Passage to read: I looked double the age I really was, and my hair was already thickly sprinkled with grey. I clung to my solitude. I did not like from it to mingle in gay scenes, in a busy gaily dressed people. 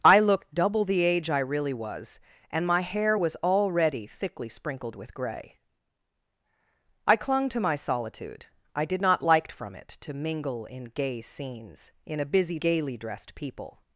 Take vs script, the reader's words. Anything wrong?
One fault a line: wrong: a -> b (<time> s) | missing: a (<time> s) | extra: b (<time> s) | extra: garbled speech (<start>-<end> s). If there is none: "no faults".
no faults